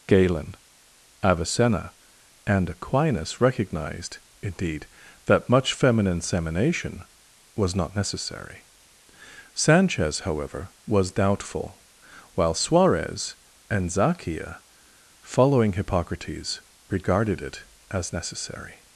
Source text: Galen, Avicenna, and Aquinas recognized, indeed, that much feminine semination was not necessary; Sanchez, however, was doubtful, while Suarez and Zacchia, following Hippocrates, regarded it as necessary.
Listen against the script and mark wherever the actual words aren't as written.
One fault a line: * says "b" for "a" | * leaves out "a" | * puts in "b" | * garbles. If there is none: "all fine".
all fine